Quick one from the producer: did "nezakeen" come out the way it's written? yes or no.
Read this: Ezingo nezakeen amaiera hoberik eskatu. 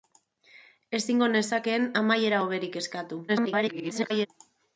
yes